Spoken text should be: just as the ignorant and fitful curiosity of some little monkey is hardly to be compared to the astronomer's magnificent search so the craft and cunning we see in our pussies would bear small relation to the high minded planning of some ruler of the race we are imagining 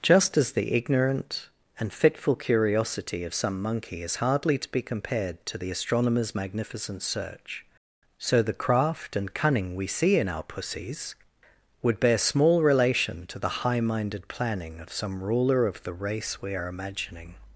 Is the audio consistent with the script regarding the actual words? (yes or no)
no